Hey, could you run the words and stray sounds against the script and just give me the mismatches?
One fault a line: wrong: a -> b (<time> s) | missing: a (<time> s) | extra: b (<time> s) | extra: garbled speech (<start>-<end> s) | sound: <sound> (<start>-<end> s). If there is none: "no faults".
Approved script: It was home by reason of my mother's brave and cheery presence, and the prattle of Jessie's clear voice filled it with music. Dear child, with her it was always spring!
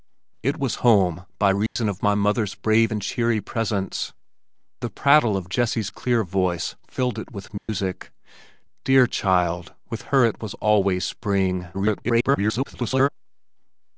sound: dropout (1.7-1.8 s)
missing: and (4.1 s)
sound: dropout (7.6-7.7 s)
extra: garbled speech (11.7-13.1 s)